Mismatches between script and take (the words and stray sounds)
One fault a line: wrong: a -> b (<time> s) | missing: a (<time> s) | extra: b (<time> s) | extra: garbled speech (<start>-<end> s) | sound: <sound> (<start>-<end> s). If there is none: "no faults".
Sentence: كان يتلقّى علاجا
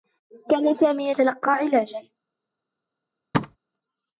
extra: سامي (0.7 s)
sound: thud (3.3-3.6 s)